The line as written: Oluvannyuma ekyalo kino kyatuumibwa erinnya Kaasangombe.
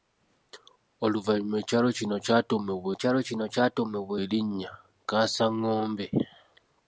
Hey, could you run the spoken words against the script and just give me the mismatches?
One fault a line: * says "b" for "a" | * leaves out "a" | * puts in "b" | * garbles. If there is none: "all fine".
* puts in "ekyalo kino kyatuumibwa"